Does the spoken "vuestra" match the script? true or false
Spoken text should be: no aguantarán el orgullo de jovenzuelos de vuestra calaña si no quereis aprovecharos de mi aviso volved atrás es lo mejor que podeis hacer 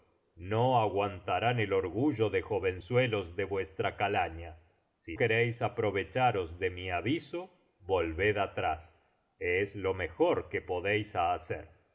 true